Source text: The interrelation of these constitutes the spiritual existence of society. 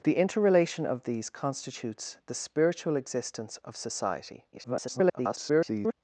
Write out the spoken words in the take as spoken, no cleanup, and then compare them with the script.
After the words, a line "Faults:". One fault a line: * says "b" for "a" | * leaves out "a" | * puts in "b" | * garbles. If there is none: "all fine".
The interrelation of these constitutes the spiritual existence of society. [garbled]
Faults:
* garbles